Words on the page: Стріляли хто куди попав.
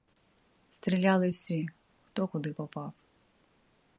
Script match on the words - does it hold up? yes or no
no